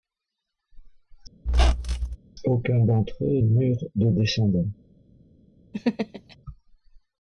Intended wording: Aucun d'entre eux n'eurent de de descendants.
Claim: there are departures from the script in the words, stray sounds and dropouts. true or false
true